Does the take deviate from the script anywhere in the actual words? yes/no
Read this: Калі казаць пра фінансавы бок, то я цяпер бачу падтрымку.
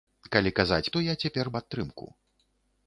yes